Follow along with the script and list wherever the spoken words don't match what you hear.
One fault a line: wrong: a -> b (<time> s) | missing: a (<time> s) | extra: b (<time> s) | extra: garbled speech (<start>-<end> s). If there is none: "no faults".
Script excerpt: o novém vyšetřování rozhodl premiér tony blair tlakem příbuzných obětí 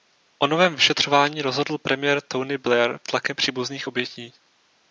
no faults